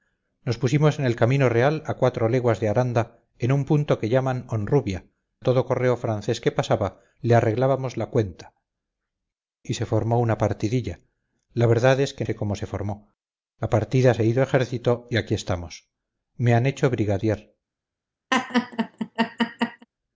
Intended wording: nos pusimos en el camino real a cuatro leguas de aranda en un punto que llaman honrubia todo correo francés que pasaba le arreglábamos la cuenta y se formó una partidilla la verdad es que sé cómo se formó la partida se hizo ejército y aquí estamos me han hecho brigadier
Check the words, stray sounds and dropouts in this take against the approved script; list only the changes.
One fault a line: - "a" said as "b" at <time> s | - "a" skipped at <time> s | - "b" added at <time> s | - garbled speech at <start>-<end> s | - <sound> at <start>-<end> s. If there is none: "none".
- laugh at 18.3-19.9 s